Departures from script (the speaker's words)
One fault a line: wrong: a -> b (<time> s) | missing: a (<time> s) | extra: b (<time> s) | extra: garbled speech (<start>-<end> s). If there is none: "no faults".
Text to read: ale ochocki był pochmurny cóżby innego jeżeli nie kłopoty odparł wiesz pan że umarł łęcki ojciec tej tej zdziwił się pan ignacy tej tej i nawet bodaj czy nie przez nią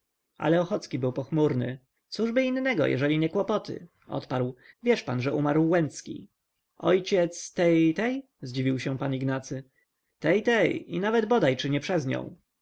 no faults